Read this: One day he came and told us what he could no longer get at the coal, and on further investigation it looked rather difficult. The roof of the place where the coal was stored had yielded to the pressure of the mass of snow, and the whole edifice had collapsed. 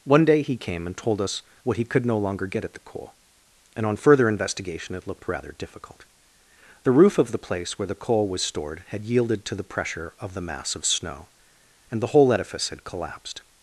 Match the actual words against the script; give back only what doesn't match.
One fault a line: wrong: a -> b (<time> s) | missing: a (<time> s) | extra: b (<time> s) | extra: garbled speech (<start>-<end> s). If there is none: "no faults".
no faults